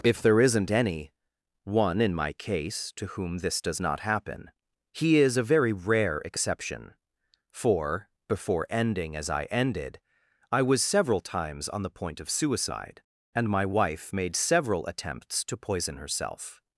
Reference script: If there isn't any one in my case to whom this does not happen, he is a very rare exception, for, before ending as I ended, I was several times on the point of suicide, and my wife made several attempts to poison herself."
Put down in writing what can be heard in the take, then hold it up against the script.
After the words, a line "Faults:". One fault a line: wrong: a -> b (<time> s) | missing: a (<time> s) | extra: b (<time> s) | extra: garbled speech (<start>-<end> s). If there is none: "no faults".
If there isn't any one in my case to whom this does not happen, he is a very rare exception, for, before ending as I ended, I was several times on the point of suicide, and my wife made several attempts to poison herself."
Faults:
no faults